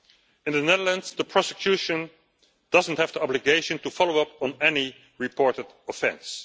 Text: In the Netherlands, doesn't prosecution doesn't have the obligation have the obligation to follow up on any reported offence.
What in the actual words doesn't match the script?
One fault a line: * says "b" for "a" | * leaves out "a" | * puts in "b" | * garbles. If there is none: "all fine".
* says "the" for "doesn't"
* leaves out "have the obligation"